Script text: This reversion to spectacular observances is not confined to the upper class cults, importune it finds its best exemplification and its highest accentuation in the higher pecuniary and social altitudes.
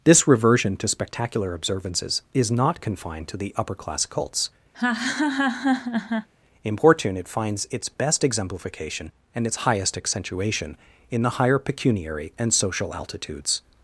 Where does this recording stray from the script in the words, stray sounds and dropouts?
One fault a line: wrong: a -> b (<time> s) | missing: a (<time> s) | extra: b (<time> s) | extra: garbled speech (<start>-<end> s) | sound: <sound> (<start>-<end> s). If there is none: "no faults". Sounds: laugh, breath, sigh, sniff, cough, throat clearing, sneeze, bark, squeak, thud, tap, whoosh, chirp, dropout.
sound: laugh (4.7-6.3 s)